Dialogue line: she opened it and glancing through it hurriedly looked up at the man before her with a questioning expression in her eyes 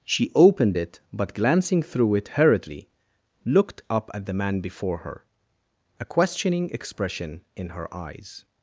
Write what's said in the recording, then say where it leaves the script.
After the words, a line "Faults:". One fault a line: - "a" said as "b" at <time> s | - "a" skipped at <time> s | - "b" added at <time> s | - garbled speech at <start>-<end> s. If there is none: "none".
she opened it but glancing through it hurriedly looked up at the man before her a questioning expression in her eyes
Faults:
- "and" said as "but" at 1.1 s
- "with" skipped at 5.2 s